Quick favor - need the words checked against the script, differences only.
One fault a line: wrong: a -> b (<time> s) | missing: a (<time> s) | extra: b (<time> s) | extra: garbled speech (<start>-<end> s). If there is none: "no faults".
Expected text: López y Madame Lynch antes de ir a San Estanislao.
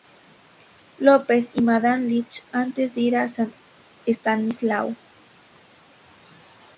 no faults